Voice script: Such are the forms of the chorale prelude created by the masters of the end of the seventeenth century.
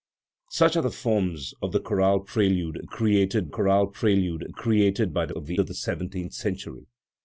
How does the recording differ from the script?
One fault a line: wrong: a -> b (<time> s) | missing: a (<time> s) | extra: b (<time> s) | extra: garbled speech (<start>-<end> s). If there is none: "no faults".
extra: chorale prelude created (3.5 s)
missing: masters (5.3 s)
missing: end (5.6 s)